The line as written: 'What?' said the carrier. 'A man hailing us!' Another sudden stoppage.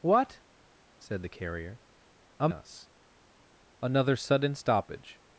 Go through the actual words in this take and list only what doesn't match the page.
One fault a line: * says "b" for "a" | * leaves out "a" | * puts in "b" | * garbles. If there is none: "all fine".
* leaves out "man hailing"